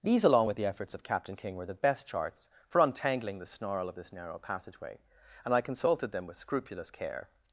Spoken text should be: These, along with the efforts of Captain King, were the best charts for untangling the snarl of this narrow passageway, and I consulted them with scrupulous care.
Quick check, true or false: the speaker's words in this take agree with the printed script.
true